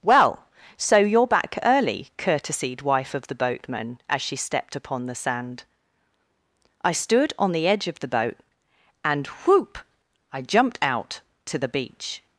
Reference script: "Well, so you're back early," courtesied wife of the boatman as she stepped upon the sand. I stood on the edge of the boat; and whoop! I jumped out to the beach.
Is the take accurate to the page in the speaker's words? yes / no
yes